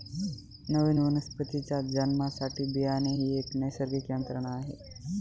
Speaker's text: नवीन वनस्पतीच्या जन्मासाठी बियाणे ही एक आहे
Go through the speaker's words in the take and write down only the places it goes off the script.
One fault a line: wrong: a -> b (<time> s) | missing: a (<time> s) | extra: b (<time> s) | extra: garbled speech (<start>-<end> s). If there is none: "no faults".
extra: नैसर्गिक यंत्रणा (3.6 s)